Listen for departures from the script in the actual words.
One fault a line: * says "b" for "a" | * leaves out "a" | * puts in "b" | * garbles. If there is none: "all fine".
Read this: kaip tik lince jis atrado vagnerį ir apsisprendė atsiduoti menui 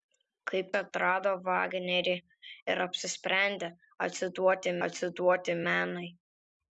* leaves out "tik lince jis"
* puts in "atsiduoti"